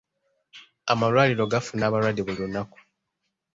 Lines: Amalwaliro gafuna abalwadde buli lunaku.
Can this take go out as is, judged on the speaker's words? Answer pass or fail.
pass